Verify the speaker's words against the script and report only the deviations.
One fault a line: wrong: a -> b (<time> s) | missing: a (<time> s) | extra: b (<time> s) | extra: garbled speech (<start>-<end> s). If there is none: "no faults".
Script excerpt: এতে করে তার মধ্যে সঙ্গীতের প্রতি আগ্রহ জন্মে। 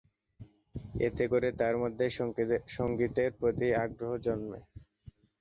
no faults